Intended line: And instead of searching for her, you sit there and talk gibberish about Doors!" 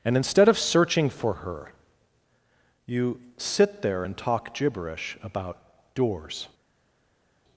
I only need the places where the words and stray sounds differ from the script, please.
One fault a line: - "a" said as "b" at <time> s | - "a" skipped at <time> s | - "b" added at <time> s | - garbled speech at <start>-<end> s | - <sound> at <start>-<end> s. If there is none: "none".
none